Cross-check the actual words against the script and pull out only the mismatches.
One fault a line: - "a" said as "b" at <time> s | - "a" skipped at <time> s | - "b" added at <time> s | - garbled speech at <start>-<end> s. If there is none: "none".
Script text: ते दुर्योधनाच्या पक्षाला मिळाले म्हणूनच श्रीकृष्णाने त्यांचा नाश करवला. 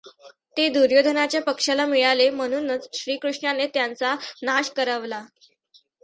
none